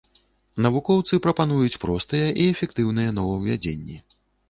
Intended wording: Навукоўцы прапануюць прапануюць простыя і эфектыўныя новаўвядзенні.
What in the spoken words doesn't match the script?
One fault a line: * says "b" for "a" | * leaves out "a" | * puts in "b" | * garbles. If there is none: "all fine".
* leaves out "прапануюць"